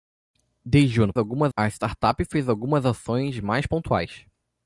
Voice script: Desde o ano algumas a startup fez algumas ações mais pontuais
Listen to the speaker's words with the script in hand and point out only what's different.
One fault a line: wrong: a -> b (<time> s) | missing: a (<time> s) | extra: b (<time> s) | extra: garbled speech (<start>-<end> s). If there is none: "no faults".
no faults